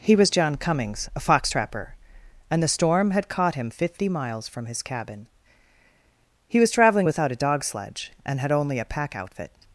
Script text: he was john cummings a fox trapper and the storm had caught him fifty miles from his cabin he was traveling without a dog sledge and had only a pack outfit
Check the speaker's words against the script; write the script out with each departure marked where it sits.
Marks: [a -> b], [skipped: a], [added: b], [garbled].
he was john cummings a fox trapper and the storm had caught him fifty miles from his cabin he was traveling without a dog sledge and had only a pack outfit